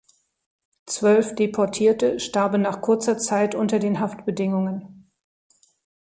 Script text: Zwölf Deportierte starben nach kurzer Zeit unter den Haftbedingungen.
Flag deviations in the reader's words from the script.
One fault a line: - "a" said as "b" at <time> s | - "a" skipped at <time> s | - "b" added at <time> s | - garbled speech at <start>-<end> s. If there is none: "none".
none